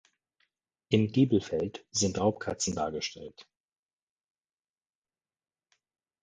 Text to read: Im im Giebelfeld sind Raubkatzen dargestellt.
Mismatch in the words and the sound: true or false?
true